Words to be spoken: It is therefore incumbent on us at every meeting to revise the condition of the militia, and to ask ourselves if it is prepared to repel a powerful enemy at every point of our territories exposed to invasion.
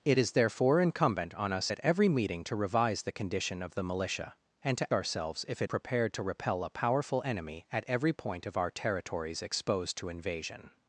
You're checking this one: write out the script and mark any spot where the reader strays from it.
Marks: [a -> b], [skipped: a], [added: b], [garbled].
It is therefore incumbent on us at every meeting to revise the condition of the militia, and to [skipped: ask] ourselves if it [skipped: is] prepared to repel a powerful enemy at every point of our territories exposed to invasion.